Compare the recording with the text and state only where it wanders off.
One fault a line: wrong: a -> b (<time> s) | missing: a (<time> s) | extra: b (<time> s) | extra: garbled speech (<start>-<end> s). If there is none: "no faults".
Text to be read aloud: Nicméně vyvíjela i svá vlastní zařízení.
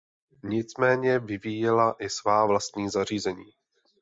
no faults